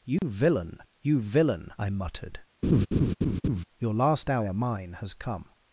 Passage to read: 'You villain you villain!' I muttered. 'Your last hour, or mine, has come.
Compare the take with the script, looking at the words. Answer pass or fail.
fail